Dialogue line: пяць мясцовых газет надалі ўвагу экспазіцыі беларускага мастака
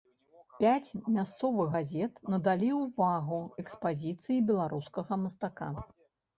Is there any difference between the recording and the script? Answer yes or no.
no